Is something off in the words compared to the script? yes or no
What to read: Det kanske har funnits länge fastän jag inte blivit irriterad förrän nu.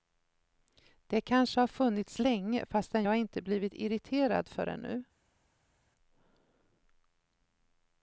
no